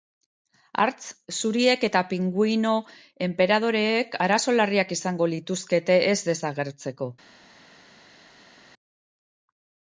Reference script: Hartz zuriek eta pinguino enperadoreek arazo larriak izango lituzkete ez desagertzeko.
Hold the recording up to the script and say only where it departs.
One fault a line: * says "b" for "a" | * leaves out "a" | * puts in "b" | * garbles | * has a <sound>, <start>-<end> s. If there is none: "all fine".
all fine